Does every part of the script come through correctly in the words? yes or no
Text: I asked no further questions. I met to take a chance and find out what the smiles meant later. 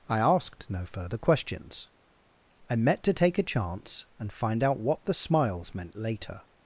yes